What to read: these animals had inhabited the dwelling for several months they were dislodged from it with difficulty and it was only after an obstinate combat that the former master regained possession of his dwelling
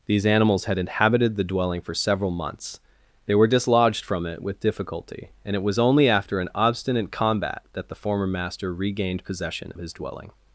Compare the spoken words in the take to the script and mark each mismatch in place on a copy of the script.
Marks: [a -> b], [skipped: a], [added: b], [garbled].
these animals had inhabited the dwelling for several months they were dislodged from it with difficulty and it was only after an obstinate combat that the former master regained possession [skipped: of] his dwelling